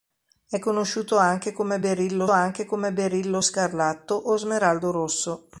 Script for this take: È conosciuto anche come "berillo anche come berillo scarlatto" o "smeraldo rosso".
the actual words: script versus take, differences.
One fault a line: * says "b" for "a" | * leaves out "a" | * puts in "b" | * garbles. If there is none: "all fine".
all fine